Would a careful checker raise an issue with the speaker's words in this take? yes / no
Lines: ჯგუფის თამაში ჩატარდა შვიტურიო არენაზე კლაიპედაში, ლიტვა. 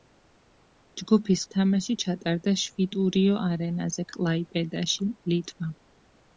no